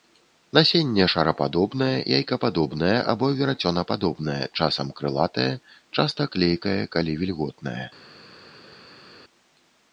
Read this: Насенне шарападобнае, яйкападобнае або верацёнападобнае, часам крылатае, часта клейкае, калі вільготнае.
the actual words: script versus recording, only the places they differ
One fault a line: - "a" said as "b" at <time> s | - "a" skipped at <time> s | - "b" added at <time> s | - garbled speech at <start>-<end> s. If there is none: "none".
none